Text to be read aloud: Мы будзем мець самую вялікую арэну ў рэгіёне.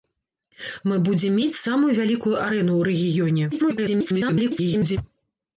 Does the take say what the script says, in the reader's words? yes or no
no